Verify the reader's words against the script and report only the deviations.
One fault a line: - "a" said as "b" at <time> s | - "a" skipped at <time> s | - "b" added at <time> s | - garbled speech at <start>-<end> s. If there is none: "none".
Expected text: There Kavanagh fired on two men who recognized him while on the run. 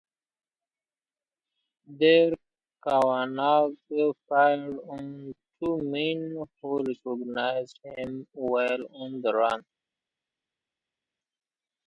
none